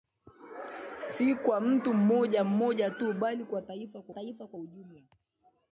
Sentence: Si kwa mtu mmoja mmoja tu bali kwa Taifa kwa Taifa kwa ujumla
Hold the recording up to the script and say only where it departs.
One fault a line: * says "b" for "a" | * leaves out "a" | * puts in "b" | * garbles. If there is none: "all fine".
all fine